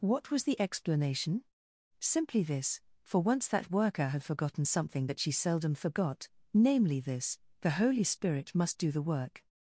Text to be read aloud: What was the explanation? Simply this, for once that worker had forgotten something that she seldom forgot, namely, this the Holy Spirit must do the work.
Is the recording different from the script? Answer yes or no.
no